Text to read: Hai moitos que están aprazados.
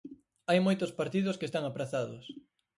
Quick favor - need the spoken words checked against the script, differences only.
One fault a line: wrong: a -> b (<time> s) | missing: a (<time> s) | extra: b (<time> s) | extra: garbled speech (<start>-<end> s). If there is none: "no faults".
extra: partidos (1.0 s)